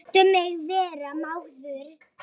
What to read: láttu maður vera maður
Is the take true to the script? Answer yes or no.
no